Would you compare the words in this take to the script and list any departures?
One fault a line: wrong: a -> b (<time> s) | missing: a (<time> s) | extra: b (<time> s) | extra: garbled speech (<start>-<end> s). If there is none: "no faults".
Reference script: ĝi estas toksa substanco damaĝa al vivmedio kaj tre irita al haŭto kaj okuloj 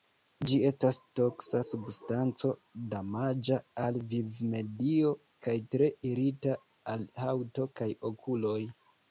no faults